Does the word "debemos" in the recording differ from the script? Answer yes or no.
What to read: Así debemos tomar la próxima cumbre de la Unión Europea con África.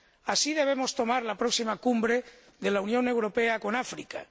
no